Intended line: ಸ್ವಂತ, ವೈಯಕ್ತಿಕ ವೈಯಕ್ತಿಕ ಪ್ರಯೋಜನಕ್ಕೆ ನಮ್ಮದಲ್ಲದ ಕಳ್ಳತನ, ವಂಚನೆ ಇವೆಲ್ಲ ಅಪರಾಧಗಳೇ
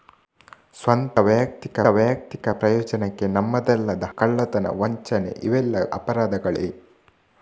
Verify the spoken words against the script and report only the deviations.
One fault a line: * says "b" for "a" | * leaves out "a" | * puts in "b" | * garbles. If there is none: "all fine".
all fine